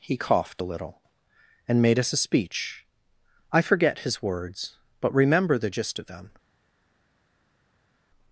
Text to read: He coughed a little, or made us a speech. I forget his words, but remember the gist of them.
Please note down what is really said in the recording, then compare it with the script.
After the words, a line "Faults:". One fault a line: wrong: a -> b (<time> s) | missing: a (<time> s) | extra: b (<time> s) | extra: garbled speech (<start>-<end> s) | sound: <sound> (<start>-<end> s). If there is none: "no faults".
He coughed a little, and made us a speech. I forget his words, but remember the gist of them.
Faults:
wrong: or -> and (1.7 s)